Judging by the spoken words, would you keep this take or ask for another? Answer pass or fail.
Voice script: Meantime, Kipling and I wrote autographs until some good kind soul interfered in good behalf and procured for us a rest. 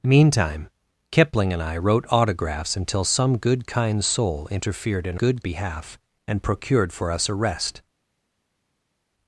pass